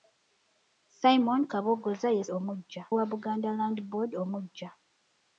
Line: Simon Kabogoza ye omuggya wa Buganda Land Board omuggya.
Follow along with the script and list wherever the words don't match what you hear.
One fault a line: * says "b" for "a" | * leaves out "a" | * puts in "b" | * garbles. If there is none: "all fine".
all fine